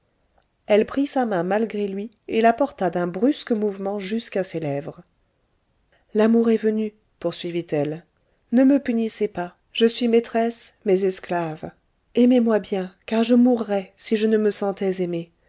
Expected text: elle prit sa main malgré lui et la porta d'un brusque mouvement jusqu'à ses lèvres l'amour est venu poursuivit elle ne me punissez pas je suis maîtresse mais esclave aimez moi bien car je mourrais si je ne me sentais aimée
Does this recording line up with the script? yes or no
yes